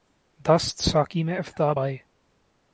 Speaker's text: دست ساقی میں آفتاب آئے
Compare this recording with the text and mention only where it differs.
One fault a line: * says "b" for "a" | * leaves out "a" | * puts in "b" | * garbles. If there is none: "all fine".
all fine